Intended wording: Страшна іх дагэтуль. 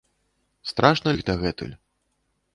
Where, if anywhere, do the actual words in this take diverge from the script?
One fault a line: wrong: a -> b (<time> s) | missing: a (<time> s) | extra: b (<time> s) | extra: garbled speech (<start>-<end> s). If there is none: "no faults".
no faults